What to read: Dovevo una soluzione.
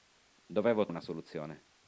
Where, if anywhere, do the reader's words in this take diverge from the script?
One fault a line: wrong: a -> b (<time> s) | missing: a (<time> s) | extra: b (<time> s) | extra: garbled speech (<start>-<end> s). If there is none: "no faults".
no faults